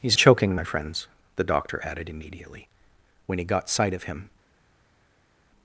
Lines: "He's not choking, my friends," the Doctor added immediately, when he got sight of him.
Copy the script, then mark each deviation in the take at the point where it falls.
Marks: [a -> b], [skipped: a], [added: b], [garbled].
"He's [skipped: not] choking, my friends," the Doctor added immediately, when he got sight of him.